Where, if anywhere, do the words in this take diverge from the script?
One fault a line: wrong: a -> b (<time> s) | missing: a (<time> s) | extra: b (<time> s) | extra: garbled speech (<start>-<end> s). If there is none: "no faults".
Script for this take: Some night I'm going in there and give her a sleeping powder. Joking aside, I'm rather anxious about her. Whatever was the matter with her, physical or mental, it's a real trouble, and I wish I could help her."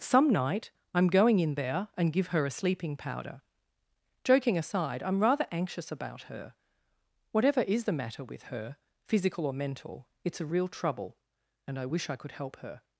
wrong: was -> is (7.6 s)